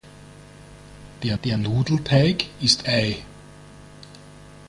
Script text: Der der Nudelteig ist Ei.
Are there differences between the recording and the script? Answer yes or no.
no